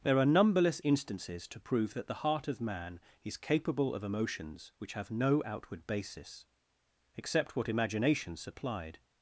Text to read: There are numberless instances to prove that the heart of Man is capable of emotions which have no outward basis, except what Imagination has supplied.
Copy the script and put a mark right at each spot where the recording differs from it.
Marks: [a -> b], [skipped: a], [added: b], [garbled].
There are numberless instances to prove that the heart of Man is capable of emotions which have no outward basis, except what Imagination [skipped: has] supplied.